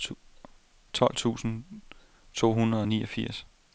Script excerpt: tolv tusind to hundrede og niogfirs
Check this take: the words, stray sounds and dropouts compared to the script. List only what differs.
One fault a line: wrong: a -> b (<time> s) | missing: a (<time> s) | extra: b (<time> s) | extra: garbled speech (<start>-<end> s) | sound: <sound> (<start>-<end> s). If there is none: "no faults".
no faults